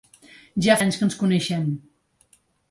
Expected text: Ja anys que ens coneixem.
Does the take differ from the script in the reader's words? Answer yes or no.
no